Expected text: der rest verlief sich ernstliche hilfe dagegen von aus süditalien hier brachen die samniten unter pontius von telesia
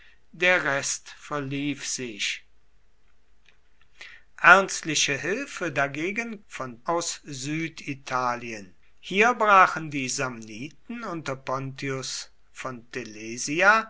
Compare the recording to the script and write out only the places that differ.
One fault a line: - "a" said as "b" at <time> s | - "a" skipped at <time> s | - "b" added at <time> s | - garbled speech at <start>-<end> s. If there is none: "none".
none